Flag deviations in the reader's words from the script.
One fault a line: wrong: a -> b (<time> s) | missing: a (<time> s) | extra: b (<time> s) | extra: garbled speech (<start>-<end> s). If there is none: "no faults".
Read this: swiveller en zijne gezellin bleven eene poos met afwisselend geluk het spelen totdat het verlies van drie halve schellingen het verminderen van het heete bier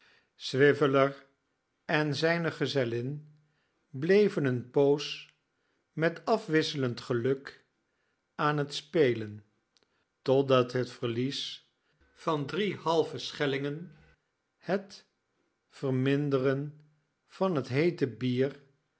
extra: aan (8.3 s)